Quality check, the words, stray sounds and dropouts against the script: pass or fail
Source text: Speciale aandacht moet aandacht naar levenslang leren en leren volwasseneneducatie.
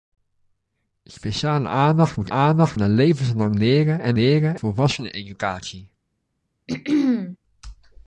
fail